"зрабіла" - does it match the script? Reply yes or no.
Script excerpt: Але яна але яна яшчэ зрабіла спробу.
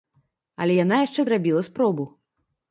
yes